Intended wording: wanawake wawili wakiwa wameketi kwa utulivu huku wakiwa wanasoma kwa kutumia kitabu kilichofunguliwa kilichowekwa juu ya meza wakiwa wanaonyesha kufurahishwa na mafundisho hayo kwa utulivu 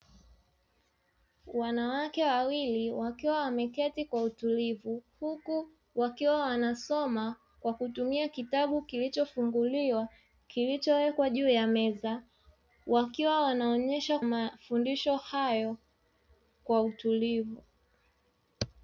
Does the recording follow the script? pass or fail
fail